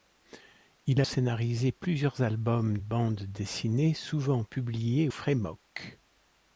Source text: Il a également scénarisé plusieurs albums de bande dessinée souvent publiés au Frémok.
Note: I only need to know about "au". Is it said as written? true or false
false